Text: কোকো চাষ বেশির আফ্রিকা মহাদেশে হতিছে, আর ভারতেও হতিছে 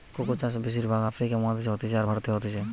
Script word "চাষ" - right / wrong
right